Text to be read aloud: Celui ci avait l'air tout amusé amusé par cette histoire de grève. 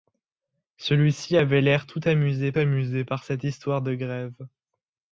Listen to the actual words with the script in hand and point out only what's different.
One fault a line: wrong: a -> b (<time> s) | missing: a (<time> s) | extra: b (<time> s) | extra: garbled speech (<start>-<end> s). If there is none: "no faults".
no faults